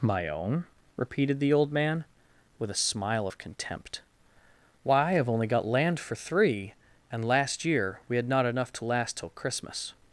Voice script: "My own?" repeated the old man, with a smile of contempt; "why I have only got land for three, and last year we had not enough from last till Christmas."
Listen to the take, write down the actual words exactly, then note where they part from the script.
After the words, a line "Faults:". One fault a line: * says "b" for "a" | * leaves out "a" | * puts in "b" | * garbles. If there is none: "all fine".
"My own?" repeated the old man, with a smile of contempt; "why I have only got land for three, and last year we had not enough to last till Christmas."
Faults:
* says "to" for "from"